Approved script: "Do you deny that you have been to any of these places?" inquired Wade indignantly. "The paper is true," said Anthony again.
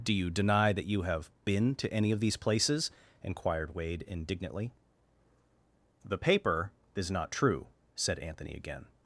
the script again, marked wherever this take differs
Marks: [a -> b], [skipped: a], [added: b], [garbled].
"Do you deny that you have been to any of these places?" inquired Wade indignantly. "The paper is [added: not] true," said Anthony again.